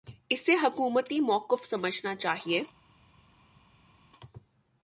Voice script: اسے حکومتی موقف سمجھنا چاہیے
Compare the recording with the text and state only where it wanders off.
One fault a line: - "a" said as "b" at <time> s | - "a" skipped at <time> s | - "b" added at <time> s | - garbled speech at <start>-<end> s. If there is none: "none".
none